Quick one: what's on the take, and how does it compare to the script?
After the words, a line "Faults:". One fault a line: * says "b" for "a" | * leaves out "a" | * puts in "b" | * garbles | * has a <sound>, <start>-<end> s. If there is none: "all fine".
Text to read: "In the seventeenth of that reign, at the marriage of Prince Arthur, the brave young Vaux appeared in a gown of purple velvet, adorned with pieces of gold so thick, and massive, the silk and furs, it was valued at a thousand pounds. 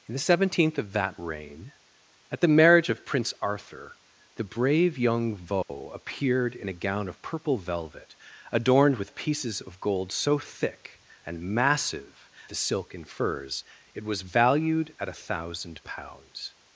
"In the seventeenth of that reign, at the marriage of Prince Arthur, the brave young Vaux appeared in a gown of purple velvet, adorned with pieces of gold so thick, and massive, the silk and furs, it was valued at a thousand pounds.
Faults:
* has a dropout, 5.6-5.7 s